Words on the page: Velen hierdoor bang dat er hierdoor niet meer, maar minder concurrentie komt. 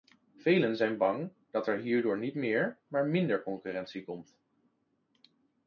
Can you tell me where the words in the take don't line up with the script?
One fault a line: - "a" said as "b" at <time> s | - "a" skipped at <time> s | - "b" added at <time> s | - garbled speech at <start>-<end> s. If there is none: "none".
- "hierdoor" said as "zijn" at 0.8 s